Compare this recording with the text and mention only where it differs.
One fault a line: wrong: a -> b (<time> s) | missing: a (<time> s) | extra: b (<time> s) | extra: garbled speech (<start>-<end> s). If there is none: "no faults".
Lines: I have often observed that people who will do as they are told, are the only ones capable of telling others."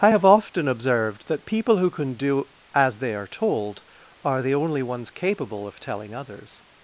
wrong: will -> can (1.9 s)